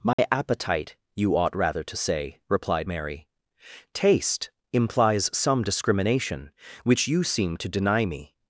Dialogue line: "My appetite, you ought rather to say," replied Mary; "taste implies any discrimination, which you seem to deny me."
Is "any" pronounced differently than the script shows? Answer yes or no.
yes